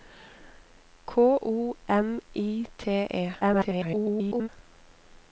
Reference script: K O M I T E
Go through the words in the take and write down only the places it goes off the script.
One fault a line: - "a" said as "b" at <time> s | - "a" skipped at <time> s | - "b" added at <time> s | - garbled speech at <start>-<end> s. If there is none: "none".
- garbled speech at 3.4-4.5 s